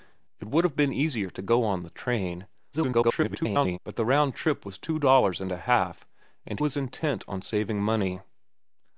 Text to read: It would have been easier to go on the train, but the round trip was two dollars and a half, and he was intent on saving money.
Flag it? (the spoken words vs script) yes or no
yes